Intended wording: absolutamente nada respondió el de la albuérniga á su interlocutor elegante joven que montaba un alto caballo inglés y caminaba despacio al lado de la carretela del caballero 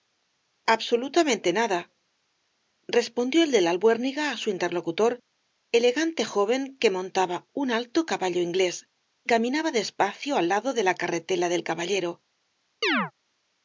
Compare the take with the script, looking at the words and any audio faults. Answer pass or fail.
fail